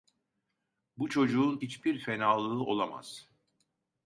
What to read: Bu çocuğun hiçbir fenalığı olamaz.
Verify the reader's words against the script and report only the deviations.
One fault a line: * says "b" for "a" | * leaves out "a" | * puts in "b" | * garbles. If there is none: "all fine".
all fine